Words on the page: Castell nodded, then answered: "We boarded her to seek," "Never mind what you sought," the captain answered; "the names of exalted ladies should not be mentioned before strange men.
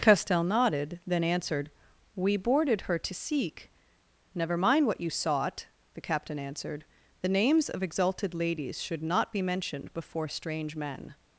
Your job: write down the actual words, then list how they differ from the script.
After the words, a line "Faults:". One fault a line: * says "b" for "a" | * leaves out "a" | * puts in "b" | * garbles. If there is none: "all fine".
Castell nodded, then answered: "We boarded her to seek," "Never mind what you sought," the captain answered; "the names of exalted ladies should not be mentioned before strange men.
Faults:
all fine